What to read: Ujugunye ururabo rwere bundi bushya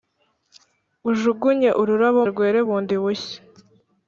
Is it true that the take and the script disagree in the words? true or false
false